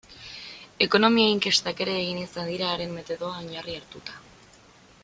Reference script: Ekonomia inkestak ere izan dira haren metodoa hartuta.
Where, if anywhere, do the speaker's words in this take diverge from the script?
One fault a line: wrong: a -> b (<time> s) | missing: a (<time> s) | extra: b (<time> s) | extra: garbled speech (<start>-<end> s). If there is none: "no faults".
extra: egin (2.0 s)
extra: oinarri (3.5 s)